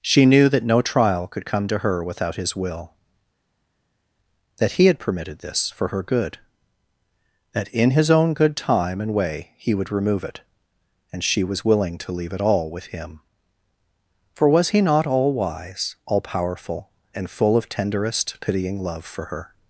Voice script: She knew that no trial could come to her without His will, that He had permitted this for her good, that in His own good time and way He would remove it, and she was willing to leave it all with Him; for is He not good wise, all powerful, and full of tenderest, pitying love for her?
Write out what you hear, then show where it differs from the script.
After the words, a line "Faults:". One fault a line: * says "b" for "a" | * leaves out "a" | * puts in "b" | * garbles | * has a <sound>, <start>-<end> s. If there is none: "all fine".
She knew that no trial could come to her without His will, that He had permitted this for her good, that in His own good time and way He would remove it, and she was willing to leave it all with Him; for was He not all wise, all powerful, and full of tenderest, pitying love for her?
Faults:
* says "was" for "is"
* says "all" for "good"